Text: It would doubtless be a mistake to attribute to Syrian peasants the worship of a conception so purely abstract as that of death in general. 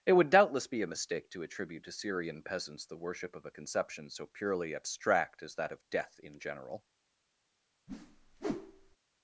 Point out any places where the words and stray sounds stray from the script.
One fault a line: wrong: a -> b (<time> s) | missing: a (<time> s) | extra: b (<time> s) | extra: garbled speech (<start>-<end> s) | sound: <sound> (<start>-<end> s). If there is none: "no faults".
sound: whoosh (7.9-9.0 s)